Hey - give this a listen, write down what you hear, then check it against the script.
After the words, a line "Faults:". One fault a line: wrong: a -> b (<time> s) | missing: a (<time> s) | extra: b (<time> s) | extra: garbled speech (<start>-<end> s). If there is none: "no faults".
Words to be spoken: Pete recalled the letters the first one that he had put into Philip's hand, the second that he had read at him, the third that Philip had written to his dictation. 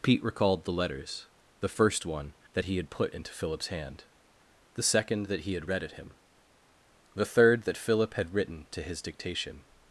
Pete recalled the letters the first one that he had put into Philip's hand, the second that he had read at him, the third that Philip had written to his dictation.
Faults:
no faults